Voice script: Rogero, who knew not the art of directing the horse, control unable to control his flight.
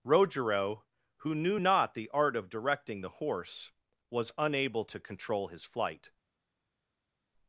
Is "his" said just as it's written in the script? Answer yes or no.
yes